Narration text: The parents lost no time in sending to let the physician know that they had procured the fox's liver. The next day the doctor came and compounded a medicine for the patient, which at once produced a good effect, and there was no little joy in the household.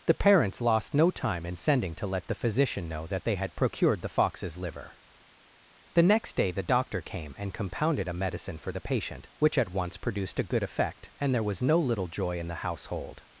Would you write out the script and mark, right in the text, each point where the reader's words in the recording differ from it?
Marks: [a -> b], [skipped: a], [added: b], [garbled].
The parents lost no time in sending to let the physician know that they had procured the fox's liver. The next day the doctor came and compounded a medicine for the patient, which at once produced a good effect, and there was no little joy in the household.